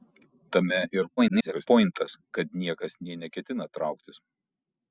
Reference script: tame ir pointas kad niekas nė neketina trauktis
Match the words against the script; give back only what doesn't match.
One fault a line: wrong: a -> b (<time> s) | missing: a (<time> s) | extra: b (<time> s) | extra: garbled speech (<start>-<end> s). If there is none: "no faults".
extra: garbled speech (1.2-1.7 s)